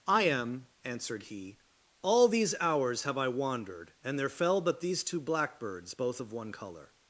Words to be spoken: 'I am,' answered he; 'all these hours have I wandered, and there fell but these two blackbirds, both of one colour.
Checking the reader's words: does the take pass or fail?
pass